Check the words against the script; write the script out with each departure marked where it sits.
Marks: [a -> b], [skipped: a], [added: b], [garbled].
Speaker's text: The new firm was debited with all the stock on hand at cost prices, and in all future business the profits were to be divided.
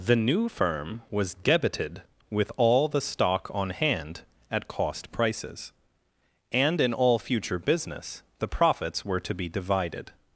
The new firm was debited with all the stock on hand at cost prices, and in all future business the profits were to be divided.